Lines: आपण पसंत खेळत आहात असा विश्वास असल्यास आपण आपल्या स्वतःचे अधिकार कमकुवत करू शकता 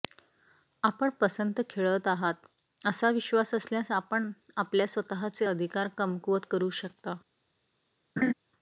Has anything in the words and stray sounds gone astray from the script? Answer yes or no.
yes